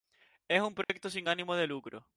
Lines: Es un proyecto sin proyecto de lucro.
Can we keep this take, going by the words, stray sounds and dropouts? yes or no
no